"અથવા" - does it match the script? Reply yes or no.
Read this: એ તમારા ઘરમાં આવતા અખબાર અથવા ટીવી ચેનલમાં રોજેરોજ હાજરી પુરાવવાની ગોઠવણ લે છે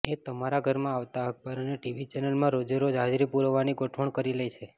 no